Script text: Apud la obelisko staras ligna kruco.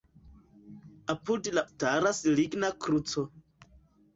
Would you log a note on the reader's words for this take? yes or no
yes